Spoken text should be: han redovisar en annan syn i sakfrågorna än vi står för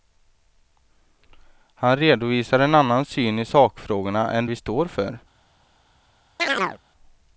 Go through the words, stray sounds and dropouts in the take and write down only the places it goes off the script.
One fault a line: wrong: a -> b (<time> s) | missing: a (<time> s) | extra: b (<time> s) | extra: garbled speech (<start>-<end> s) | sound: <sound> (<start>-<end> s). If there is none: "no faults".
sound: chirp (6.4-6.8 s)